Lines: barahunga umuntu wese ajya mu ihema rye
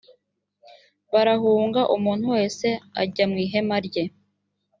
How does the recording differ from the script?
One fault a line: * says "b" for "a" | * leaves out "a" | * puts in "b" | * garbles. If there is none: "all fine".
all fine